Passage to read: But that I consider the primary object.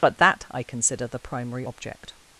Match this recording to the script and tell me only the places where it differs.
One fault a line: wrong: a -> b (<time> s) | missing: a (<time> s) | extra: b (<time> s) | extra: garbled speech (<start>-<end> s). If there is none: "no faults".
no faults